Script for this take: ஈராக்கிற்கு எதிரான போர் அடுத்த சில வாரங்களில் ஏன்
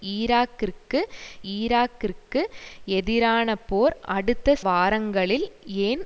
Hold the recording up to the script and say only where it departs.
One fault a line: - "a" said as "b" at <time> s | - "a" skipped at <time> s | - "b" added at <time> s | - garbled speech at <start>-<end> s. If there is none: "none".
- "ஈராக்கிற்கு" added at 1.5 s
- "சில" skipped at 4.6 s